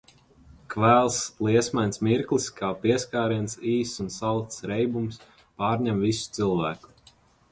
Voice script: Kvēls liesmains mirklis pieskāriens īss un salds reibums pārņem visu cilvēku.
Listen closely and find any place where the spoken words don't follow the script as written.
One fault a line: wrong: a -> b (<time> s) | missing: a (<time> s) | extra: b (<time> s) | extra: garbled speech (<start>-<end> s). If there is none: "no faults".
extra: kā (2.6 s)